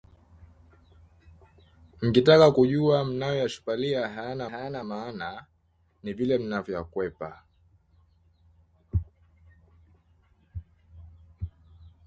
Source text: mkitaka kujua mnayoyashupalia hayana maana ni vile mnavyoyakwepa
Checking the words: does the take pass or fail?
fail